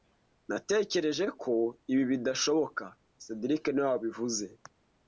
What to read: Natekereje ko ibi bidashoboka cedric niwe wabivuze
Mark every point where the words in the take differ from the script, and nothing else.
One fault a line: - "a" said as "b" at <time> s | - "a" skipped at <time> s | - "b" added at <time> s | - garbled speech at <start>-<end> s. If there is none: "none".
none